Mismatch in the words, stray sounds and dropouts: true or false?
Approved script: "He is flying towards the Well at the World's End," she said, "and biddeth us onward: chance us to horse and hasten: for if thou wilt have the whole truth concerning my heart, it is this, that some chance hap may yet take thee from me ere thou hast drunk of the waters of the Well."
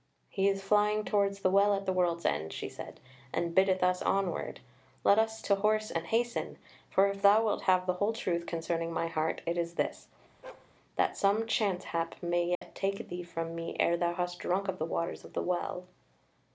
true